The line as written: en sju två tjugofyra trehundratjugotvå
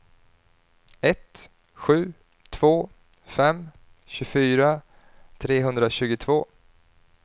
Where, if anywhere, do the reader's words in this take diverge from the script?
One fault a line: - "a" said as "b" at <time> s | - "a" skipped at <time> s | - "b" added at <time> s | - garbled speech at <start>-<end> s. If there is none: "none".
- "en" said as "ett" at 1.0 s
- "fem" added at 3.2 s